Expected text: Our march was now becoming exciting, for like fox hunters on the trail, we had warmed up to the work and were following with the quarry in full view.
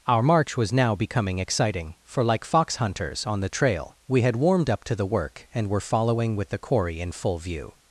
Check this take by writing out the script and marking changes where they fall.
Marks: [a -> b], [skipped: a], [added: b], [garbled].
Our march was now becoming exciting, for like fox hunters on the trail, we had warmed up to the work and were following with the quarry in full view.